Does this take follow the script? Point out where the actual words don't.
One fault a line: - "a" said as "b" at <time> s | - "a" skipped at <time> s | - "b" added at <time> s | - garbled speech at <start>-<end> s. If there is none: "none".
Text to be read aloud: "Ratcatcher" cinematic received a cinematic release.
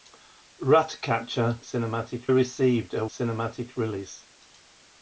none